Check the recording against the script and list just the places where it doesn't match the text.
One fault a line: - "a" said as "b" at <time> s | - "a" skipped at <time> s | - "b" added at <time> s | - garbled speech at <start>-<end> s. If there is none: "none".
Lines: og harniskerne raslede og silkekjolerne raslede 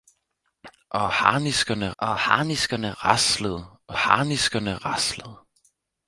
- "og harniskerne" added at 2.0 s
- "silkekjolerne" said as "harniskerne" at 3.9 s